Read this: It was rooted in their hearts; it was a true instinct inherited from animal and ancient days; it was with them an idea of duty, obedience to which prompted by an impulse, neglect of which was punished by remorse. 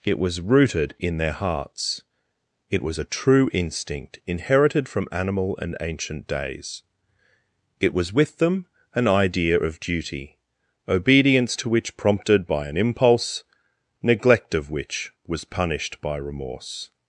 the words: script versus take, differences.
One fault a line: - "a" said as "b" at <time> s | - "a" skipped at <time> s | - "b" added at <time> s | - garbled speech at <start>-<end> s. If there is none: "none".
none